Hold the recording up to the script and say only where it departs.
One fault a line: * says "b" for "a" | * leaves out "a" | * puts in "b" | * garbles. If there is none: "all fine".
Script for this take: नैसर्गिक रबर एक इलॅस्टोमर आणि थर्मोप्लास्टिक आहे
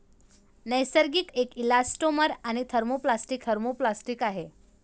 * leaves out "रबर"
* puts in "थर्मोप्लास्टिक"